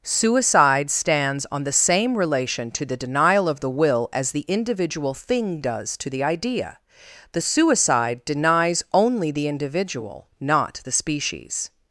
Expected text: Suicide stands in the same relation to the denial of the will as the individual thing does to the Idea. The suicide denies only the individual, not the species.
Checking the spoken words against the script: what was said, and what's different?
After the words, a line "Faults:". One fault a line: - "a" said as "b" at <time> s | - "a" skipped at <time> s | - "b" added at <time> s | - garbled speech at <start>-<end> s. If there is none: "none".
Suicide stands on the same relation to the denial of the will as the individual thing does to the Idea. The suicide denies only the individual, not the species.
Faults:
- "in" said as "on" at 1.5 s